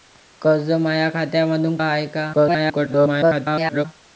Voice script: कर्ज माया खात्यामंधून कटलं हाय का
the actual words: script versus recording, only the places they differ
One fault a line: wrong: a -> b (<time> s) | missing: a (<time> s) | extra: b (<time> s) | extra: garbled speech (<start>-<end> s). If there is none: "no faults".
missing: कटलं (1.8 s)
extra: garbled speech (2.3-3.9 s)